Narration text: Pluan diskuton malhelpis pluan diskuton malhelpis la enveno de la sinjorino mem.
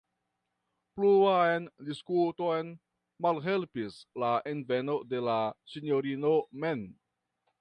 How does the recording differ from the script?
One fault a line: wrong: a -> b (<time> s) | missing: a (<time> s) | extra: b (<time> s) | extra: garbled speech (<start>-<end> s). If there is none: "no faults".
missing: pluan diskuton malhelpis (4.0 s)